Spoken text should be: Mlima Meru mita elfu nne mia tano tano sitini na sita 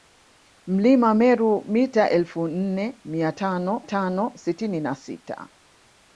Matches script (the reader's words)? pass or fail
pass